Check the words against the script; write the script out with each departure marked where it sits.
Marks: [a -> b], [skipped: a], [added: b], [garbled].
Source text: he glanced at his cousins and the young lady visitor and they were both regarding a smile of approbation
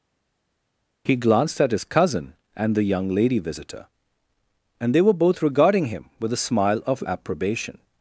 he glanced at his [cousins -> cousin] and the young lady visitor and they were both regarding [added: him with] a smile of approbation